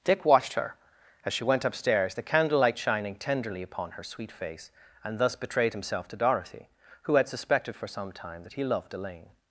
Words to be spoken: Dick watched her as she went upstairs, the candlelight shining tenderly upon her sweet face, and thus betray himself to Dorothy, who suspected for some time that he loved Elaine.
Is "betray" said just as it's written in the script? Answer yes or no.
no